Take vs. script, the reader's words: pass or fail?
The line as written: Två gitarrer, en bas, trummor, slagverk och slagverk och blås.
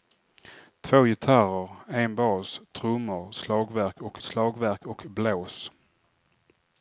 pass